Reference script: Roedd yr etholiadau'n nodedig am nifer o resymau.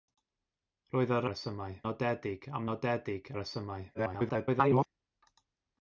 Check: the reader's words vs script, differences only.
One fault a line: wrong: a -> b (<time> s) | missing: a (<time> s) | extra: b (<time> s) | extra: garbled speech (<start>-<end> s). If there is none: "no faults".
wrong: etholiadau'n -> resymau (1.3 s)
wrong: nifer -> nodedig (2.7 s)
extra: garbled speech (3.9-4.9 s)